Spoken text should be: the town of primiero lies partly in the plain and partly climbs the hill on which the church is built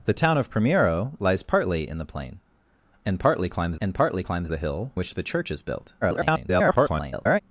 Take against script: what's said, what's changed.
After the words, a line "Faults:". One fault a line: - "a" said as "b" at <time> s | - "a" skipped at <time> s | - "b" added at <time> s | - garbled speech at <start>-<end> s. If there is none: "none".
the town of primiero lies partly in the plain and partly climbs and partly climbs the hill which the church is built [garbled]
Faults:
- "and partly climbs" added at 3.8 s
- "on" skipped at 4.9 s
- garbled speech at 6.0-7.4 s